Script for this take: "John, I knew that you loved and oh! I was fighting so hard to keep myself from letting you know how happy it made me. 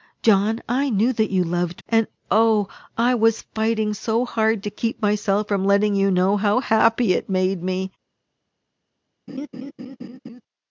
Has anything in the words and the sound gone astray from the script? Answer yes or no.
yes